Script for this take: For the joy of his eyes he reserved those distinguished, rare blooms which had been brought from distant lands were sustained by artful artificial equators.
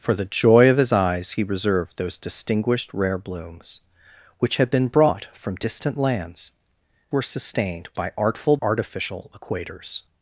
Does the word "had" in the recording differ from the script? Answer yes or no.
no